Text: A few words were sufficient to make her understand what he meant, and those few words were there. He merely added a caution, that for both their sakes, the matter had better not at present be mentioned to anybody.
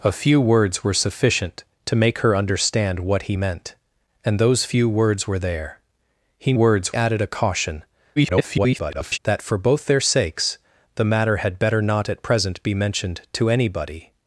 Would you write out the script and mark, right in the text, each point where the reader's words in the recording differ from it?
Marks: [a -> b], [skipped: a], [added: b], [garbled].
A few words were sufficient to make her understand what he meant, and those few words were there. He [merely -> words] added a caution, [garbled] that for both their sakes, the matter had better not at present be mentioned to anybody.